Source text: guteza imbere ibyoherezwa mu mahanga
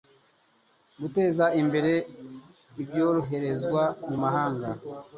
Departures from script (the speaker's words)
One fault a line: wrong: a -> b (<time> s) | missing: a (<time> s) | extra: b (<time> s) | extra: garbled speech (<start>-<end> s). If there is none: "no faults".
no faults